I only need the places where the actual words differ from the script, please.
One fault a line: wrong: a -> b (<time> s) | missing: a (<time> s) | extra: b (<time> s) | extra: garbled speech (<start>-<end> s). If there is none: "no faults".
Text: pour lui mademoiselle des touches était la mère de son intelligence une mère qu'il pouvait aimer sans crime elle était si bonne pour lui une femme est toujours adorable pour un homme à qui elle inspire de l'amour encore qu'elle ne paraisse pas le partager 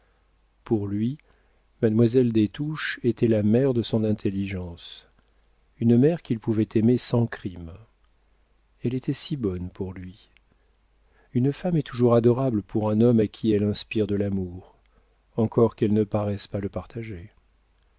no faults